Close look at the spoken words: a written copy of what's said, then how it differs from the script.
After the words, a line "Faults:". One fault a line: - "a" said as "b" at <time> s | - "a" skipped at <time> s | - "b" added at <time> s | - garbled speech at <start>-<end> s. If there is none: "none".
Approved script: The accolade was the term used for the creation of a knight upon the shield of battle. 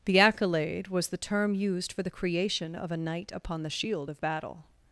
The accolade was the term used for the creation of a knight upon the shield of battle.
Faults:
none